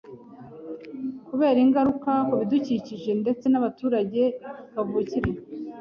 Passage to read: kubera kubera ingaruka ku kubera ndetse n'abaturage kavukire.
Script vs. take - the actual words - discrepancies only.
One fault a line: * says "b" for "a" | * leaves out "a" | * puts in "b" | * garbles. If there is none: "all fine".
* leaves out "kubera"
* says "bidukikije" for "kubera"